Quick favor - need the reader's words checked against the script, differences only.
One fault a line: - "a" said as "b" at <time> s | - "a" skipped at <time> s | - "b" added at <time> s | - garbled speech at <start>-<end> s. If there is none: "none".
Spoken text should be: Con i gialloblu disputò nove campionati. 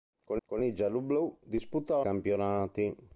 - "con" added at 0.5 s
- "nove" skipped at 2.0 s